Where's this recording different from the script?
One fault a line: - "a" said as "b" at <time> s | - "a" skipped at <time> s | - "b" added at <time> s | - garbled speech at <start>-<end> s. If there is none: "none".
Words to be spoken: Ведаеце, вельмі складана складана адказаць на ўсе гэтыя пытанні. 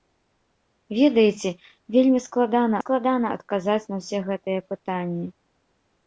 none